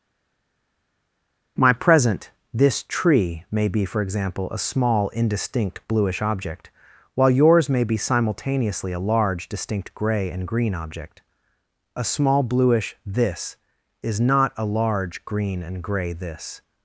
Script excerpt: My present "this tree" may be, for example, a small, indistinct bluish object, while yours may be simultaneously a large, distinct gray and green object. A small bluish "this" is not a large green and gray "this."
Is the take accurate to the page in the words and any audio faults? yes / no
yes